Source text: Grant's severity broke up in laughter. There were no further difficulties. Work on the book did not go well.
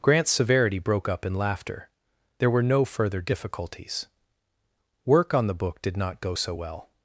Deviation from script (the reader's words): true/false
true